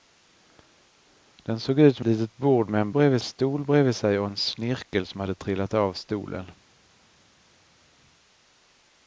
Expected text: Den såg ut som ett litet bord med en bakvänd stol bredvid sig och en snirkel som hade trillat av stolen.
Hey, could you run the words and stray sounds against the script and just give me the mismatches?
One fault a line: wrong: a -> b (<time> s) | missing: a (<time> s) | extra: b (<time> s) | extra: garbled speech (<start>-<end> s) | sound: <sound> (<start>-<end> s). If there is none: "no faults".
missing: ett (2.0 s)
wrong: bakvänd -> bredvid (2.9 s)